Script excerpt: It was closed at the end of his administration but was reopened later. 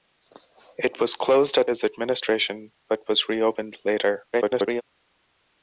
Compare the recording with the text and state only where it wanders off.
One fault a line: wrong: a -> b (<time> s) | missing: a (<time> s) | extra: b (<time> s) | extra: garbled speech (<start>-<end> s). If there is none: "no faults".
missing: the end of (1.7 s)
extra: garbled speech (4.3-4.8 s)